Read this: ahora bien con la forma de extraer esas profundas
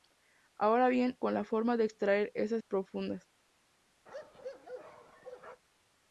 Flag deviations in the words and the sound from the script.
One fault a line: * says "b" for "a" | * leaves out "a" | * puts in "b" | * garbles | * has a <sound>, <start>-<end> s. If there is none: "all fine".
* has a bark, 4.1-5.6 s